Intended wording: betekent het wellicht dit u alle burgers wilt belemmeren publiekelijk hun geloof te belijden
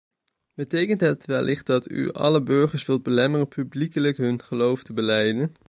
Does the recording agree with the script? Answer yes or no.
no